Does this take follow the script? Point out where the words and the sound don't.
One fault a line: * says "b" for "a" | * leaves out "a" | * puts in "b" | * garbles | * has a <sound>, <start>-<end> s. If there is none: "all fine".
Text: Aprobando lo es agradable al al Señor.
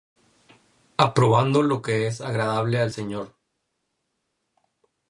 * puts in "que"
* leaves out "al"